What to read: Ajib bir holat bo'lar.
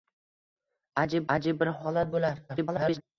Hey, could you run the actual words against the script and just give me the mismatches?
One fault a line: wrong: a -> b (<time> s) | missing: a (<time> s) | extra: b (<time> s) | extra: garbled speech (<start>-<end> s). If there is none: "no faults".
extra: ajib (1.4 s)
extra: garbled speech (2.5-3.0 s)